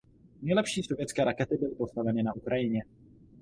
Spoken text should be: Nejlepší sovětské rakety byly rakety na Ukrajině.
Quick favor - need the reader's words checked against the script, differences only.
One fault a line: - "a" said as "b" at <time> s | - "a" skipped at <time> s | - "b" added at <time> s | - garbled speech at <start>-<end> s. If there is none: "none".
- "rakety" said as "postaveny" at 1.8 s